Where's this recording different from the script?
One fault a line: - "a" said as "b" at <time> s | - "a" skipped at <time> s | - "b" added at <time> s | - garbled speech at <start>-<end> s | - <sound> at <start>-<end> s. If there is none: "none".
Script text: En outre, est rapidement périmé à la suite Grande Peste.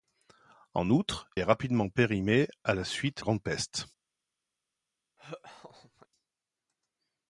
- laugh at 5.2-6.1 s